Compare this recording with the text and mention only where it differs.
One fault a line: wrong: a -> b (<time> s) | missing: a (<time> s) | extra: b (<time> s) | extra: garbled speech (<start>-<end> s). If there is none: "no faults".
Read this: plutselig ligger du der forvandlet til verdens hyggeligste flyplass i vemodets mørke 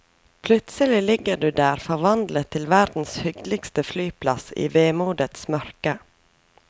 no faults